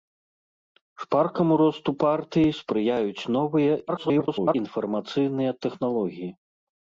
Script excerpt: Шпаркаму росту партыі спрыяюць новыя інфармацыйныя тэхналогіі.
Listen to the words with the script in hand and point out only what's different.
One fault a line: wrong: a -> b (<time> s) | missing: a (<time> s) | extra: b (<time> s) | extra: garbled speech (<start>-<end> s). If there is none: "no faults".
extra: garbled speech (3.9-4.5 s)